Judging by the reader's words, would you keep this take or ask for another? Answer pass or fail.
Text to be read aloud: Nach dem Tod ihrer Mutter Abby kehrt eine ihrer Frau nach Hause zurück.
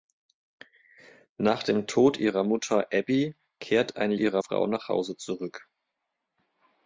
pass